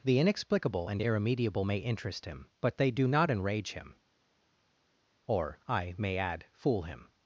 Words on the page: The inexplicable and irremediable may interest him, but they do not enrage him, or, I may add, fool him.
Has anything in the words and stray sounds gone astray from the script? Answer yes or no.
no